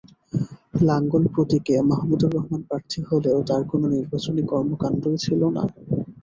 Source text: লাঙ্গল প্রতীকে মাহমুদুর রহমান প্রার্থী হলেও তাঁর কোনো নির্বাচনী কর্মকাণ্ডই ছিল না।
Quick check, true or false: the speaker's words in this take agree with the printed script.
true